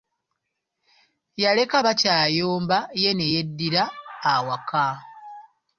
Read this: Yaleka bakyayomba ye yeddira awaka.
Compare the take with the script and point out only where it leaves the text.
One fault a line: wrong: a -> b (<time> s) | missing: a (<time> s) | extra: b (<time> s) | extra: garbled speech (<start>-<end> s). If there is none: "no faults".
extra: ne (3.2 s)